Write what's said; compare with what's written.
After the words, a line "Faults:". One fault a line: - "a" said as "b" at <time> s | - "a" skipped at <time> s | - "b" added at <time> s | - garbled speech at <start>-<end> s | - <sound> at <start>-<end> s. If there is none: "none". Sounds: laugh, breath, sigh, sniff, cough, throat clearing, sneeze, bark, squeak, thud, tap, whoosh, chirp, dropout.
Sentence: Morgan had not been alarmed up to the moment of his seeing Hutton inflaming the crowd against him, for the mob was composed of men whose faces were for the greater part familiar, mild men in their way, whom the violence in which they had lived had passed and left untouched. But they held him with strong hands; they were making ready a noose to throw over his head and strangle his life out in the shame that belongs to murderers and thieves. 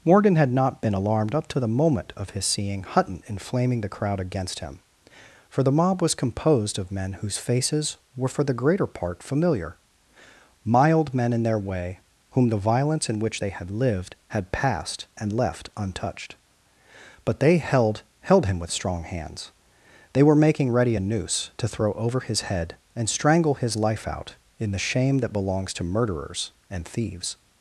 Morgan had not been alarmed up to the moment of his seeing Hutton inflaming the crowd against him, for the mob was composed of men whose faces were for the greater part familiar, mild men in their way, whom the violence in which they had lived had passed and left untouched. But they held held him with strong hands; they were making ready a noose to throw over his head and strangle his life out in the shame that belongs to murderers and thieves.
Faults:
- "held" added at 18.2 s